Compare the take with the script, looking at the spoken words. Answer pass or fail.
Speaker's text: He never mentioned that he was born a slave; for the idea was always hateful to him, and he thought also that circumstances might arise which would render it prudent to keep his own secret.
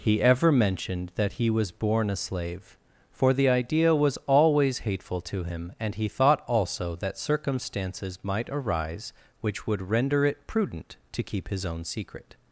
fail